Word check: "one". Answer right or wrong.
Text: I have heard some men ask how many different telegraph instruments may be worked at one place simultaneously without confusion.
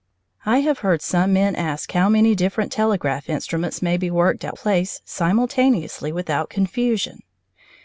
wrong